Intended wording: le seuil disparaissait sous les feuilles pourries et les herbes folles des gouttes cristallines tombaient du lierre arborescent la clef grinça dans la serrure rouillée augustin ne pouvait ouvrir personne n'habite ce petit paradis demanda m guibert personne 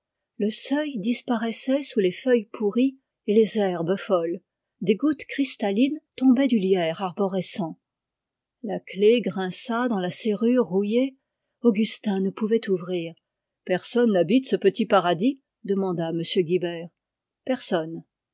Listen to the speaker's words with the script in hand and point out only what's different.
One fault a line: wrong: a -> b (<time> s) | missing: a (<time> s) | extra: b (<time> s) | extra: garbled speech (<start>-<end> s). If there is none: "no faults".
no faults